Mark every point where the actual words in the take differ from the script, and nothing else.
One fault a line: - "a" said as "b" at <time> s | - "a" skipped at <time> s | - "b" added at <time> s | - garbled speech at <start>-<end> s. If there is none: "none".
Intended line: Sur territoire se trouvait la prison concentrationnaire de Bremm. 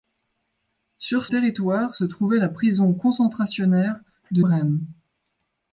none